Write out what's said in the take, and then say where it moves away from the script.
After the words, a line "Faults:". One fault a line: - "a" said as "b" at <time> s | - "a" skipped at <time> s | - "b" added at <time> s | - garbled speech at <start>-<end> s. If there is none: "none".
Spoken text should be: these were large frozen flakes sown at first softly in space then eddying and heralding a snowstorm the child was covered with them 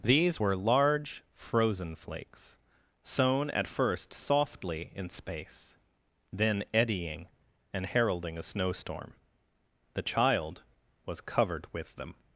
these were large frozen flakes sown at first softly in space then eddying and heralding a snowstorm the child was covered with them
Faults:
none